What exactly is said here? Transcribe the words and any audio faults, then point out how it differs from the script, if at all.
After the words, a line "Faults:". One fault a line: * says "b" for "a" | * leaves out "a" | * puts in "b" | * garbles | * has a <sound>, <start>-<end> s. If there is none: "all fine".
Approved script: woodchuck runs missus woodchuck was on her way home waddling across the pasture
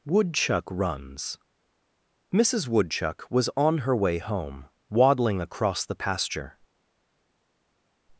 woodchuck runs missus woodchuck was on her way home waddling across the pasture
Faults:
all fine